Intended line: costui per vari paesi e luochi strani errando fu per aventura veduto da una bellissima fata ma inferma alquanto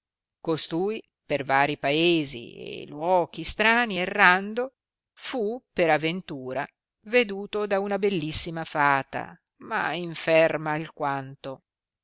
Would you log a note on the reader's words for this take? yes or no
no